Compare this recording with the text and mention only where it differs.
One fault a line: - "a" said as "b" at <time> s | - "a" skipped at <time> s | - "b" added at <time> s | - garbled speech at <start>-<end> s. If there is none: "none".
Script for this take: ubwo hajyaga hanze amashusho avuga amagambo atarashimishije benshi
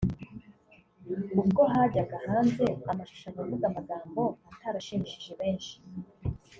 none